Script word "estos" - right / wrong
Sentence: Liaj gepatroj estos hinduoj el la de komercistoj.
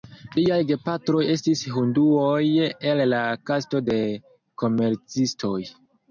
wrong